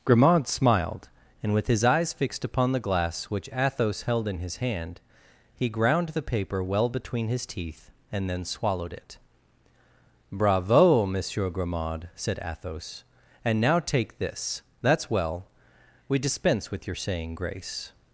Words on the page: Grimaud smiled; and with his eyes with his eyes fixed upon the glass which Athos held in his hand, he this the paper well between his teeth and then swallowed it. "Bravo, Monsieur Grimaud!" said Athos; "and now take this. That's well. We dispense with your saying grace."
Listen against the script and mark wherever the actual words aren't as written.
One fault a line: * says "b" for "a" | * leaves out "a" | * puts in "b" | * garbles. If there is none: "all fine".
* leaves out "with his eyes"
* says "ground" for "this"